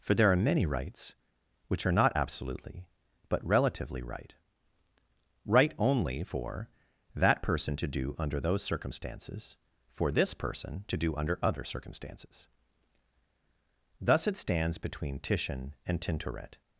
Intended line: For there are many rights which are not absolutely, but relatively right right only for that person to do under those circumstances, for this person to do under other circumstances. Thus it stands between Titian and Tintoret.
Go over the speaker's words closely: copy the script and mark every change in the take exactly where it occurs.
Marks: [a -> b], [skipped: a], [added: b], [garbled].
For there are many rights which are not absolutely, but relatively right right only for that person to do under those circumstances, for this person to do under other circumstances. Thus it stands between Titian and Tintoret.